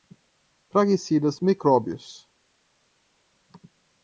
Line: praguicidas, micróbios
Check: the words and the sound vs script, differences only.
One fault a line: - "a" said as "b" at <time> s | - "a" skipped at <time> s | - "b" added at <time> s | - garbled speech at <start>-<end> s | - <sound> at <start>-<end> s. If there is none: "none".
none